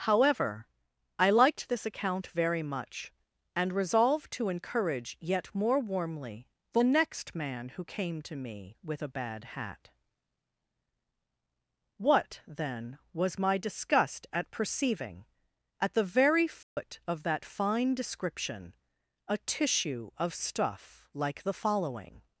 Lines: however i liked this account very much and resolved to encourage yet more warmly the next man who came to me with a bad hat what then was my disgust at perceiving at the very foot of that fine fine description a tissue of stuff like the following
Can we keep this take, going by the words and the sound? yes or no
no